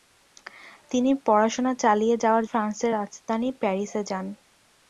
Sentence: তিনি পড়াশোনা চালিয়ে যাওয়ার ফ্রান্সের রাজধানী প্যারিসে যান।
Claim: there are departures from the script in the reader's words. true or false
false